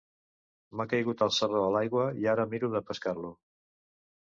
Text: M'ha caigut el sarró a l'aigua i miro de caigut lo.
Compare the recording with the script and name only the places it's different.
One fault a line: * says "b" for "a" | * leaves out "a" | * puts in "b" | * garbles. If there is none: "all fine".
* puts in "ara"
* says "pescar" for "caigut"